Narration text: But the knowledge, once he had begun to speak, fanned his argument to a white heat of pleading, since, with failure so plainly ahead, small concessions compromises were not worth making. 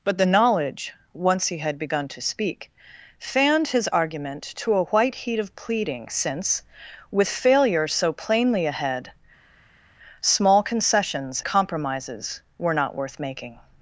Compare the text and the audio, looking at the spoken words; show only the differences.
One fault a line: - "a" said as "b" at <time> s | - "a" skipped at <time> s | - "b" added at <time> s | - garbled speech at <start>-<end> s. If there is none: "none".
none